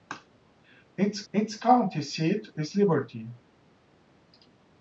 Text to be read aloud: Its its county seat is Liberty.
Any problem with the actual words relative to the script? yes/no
no